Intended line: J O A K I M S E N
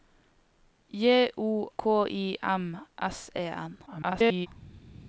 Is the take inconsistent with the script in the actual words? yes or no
yes